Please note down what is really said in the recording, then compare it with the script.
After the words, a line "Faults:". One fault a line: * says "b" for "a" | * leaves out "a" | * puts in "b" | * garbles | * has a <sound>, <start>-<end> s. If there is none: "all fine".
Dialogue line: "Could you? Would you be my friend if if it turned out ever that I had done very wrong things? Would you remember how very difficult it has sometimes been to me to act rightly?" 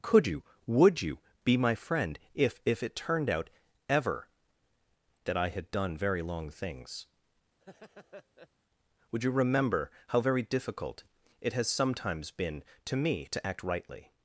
"Could you? Would you be my friend if if it turned out ever that I had done very long things? Would you remember how very difficult it has sometimes been to me to act rightly?"
Faults:
* says "long" for "wrong"
* has a laugh, 7.6-8.5 s